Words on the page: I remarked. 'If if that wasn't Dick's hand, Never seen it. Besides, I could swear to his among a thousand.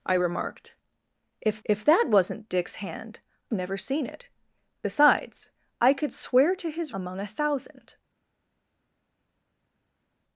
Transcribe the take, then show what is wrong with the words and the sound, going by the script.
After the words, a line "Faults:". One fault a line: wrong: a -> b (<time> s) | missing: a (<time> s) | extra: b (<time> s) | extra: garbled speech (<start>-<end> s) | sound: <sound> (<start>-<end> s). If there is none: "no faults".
I remarked. 'If if that wasn't Dick's hand, Never seen it. Besides, I could swear to his among a thousand.
Faults:
no faults